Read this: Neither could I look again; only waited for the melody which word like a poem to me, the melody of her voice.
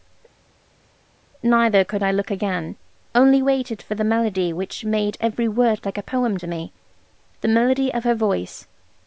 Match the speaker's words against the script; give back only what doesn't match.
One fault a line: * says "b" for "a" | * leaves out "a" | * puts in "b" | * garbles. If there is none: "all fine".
* puts in "made every"